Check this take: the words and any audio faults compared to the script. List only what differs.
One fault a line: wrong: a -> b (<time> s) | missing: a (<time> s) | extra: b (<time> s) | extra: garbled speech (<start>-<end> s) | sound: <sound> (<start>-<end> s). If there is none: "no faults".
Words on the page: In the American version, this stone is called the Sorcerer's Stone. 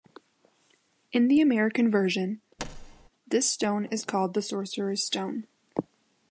sound: thud (2.6-3.1 s)